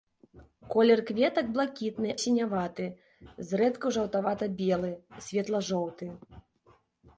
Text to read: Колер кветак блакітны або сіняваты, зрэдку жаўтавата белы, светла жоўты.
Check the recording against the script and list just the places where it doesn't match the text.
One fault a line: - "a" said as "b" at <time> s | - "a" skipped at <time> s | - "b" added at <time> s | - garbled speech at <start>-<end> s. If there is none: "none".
- "або" skipped at 2.1 s